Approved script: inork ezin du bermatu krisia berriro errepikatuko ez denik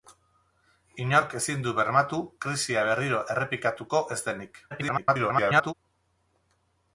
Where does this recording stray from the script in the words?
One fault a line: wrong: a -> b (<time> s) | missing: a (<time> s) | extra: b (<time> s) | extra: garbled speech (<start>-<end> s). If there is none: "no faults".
extra: garbled speech (4.7-5.7 s)